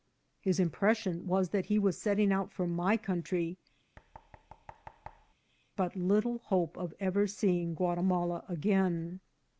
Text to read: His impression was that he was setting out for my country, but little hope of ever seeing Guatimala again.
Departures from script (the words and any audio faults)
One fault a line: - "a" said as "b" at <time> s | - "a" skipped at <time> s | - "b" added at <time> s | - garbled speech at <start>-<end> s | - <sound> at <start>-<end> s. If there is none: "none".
- thud at 4.0-5.3 s